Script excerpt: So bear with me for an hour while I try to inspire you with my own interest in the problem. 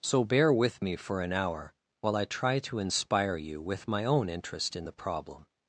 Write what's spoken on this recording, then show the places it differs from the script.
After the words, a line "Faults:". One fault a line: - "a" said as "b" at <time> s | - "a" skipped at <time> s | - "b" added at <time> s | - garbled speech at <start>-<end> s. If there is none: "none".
So bear with me for an hour while I try to inspire you with my own interest in the problem.
Faults:
none